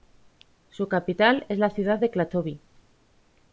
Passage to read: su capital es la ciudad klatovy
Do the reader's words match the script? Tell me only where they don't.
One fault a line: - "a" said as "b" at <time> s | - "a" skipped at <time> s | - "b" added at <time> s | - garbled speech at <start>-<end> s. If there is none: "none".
- "de" added at 2.0 s